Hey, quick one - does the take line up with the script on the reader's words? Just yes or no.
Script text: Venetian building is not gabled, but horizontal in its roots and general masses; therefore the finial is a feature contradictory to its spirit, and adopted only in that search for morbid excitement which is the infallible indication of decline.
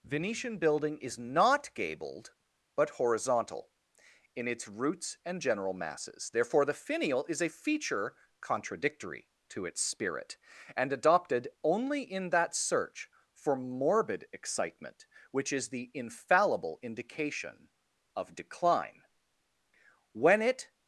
no